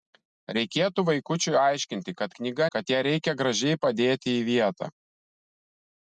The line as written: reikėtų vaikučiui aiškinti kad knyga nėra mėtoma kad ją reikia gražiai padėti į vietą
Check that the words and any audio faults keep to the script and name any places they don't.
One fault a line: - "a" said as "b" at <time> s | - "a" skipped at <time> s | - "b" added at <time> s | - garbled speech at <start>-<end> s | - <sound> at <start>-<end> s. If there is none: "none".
- "nėra mėtoma" skipped at 2.7 s